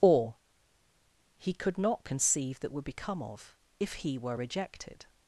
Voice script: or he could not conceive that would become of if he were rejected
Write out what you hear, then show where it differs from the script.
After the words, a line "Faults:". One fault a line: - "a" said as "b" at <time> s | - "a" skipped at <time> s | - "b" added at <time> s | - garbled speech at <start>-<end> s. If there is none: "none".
or he could not conceive that would become of if he were rejected
Faults:
none